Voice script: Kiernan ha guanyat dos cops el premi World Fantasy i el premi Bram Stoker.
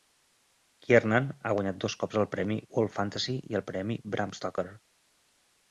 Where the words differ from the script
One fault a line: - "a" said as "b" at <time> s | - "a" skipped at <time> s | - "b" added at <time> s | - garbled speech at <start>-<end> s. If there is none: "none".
none